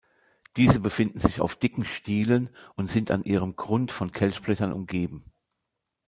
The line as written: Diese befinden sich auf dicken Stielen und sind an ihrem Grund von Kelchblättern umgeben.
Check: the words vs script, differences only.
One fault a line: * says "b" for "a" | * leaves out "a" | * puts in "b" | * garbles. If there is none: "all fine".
all fine